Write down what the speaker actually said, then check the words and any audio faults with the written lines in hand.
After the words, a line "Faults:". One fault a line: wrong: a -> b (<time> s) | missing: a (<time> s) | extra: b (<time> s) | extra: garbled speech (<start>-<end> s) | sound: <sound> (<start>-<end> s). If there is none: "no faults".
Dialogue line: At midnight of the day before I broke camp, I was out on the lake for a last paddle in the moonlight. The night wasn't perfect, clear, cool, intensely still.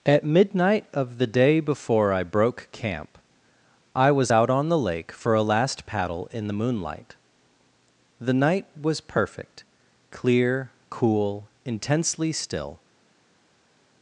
At midnight of the day before I broke camp, I was out on the lake for a last paddle in the moonlight. The night was perfect, clear, cool, intensely still.
Faults:
wrong: wasn't -> was (8.8 s)